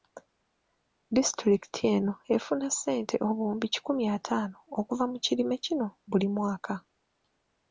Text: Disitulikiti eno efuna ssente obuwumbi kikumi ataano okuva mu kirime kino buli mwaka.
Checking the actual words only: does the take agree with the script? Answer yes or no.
yes